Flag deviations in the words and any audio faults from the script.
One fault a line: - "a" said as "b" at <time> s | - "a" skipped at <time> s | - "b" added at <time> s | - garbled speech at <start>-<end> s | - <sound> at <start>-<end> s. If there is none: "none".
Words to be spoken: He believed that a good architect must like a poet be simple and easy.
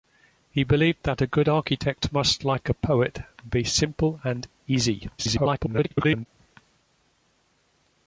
- garbled speech at 5.2-6.3 s